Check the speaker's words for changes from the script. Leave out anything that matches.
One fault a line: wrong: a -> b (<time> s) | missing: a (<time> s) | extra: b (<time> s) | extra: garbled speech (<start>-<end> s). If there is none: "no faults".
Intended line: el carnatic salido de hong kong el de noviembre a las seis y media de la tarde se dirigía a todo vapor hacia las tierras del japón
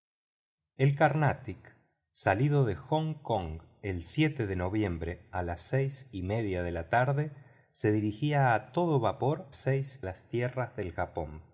wrong: hacia -> seis (9.5 s)